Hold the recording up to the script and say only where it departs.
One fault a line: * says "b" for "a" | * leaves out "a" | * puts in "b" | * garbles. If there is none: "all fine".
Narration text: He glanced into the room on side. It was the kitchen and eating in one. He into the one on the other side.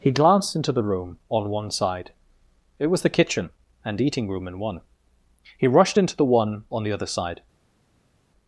* puts in "one"
* puts in "room"
* puts in "rushed"